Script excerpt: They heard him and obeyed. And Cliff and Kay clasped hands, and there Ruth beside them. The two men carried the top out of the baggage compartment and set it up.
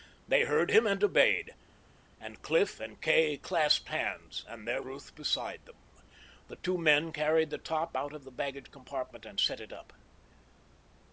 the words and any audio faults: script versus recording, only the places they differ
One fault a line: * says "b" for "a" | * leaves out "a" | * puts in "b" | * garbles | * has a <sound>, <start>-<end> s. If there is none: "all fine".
all fine